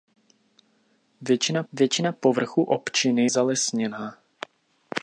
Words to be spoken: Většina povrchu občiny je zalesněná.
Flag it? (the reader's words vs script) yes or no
yes